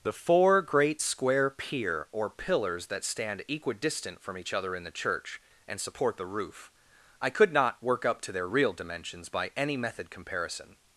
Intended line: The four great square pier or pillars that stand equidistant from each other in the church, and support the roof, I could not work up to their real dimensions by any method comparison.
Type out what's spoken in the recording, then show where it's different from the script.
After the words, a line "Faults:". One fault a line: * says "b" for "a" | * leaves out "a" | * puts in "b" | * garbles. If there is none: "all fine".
The four great square pier or pillars that stand equidistant from each other in the church, and support the roof, I could not work up to their real dimensions by any method comparison.
Faults:
all fine